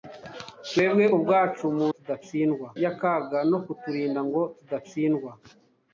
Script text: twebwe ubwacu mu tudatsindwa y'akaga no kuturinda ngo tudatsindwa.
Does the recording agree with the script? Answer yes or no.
yes